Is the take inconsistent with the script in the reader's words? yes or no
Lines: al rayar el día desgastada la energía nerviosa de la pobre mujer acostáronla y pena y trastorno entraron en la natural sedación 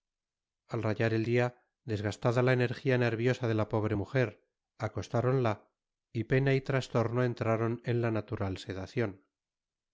no